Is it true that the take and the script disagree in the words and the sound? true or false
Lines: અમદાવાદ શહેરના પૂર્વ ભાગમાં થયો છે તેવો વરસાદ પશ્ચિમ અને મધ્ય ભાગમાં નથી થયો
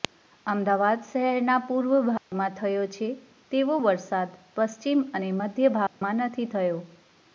true